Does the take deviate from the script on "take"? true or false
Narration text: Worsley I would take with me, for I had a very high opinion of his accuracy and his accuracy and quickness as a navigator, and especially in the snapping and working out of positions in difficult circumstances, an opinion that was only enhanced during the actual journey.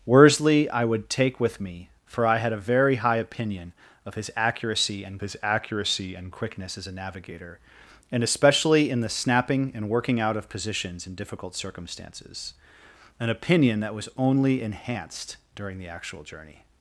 false